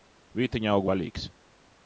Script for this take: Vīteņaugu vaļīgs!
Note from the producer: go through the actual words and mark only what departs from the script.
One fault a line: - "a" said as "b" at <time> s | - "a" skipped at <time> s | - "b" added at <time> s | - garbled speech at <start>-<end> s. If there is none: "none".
none